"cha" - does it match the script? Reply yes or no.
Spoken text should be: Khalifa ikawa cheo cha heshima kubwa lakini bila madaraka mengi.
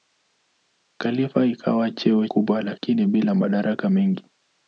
no